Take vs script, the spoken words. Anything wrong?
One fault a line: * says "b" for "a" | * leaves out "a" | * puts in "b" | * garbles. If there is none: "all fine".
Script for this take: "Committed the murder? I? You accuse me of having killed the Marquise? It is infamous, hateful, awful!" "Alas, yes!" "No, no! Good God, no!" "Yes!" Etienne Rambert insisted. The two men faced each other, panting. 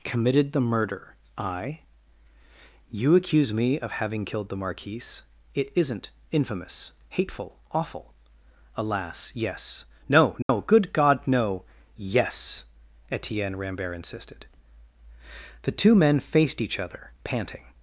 * says "isn't" for "is"